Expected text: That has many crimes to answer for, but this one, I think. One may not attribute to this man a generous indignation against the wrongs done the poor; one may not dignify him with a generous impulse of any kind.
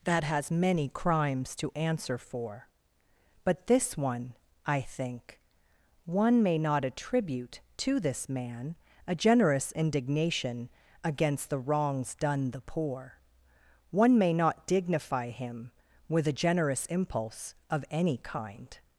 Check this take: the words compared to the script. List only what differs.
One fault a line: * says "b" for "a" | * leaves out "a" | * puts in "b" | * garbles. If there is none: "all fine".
all fine